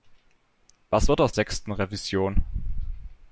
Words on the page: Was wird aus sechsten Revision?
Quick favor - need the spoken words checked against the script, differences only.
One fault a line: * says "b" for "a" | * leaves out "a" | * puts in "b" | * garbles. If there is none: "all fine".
all fine